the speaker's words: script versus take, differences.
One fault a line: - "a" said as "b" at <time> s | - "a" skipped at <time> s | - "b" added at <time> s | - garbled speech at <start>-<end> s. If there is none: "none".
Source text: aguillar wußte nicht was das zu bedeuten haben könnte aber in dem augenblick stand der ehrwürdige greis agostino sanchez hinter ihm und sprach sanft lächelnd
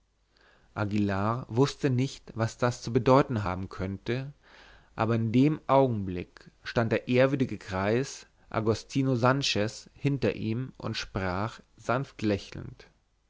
none